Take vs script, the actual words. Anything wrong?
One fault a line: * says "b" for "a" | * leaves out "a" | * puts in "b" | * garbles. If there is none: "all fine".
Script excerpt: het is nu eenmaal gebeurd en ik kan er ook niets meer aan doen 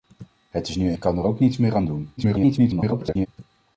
* leaves out "eenmaal gebeurd en"
* garbles